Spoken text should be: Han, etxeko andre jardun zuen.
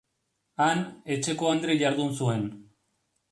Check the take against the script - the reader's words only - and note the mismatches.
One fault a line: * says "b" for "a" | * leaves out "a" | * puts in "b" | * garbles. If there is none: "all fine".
all fine